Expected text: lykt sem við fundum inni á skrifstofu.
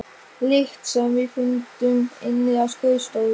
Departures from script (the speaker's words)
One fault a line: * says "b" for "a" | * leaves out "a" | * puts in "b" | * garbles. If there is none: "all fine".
all fine